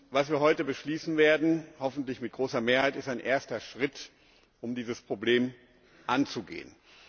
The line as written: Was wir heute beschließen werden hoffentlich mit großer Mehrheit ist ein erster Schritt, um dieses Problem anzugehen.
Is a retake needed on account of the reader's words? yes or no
no